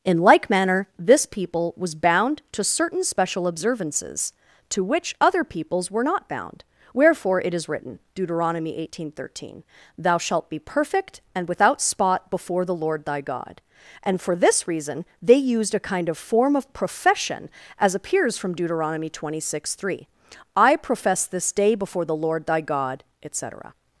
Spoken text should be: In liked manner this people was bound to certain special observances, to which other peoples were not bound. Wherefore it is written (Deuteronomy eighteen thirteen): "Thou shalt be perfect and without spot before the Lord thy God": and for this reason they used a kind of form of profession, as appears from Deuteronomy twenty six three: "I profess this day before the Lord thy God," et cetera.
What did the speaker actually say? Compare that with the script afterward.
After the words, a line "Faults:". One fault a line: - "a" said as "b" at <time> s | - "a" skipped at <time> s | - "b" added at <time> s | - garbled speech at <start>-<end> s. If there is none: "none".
In like manner this people was bound to certain special observances, to which other peoples were not bound. Wherefore it is written (Deuteronomy eighteen thirteen): "Thou shalt be perfect and without spot before the Lord thy God": and for this reason they used a kind of form of profession, as appears from Deuteronomy twenty six three: "I profess this day before the Lord thy God," et cetera.
Faults:
- "liked" said as "like" at 0.2 s